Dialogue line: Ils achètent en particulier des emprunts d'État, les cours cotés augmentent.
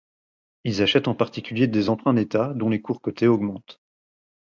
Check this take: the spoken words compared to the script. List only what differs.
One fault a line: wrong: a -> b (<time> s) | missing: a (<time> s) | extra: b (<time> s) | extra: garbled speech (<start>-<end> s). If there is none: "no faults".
extra: dont (2.5 s)